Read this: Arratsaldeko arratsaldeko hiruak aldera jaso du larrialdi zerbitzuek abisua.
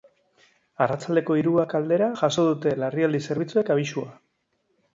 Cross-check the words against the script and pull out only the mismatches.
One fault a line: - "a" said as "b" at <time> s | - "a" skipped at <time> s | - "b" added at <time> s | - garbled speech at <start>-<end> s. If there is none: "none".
- "arratsaldeko" skipped at 1.4 s
- "du" said as "dute" at 2.5 s